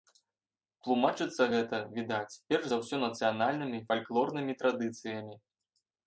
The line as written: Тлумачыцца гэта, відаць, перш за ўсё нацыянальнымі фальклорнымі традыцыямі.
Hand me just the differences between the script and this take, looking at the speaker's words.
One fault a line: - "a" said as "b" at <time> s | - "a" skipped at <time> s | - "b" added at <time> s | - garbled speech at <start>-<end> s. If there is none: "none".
none